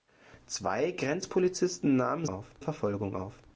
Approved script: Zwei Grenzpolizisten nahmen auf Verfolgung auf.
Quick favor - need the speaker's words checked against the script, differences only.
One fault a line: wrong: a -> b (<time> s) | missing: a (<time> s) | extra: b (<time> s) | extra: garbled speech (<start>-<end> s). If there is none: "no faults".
no faults